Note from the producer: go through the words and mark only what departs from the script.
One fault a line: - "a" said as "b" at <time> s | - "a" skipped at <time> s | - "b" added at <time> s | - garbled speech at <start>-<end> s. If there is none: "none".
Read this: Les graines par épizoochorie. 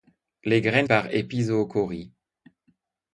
none